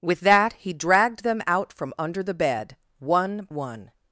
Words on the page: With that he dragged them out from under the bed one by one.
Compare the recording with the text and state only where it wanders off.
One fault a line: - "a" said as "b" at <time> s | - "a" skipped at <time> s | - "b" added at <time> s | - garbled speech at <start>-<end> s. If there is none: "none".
- "by" skipped at 3.5 s